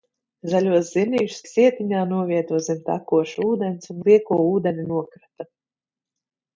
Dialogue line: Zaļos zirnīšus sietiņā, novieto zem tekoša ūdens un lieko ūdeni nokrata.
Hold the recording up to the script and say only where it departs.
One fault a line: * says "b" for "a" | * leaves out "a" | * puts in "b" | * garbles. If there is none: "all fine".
all fine